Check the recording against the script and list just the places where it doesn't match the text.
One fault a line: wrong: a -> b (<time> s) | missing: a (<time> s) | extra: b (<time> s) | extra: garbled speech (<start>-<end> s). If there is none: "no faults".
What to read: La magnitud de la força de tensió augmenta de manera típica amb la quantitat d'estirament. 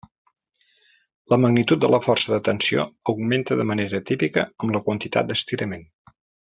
no faults